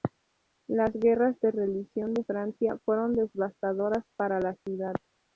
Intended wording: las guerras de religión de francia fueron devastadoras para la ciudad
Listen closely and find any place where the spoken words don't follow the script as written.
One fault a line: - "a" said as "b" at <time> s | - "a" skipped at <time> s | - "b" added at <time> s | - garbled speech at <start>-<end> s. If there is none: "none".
none